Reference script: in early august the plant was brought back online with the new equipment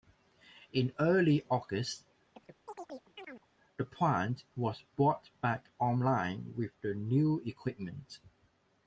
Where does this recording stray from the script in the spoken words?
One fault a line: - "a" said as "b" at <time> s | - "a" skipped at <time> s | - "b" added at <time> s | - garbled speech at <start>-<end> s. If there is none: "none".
none